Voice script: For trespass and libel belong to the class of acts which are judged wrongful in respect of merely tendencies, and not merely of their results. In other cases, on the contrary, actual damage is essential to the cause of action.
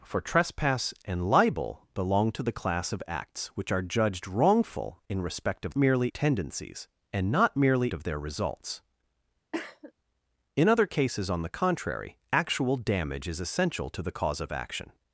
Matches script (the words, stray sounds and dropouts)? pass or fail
fail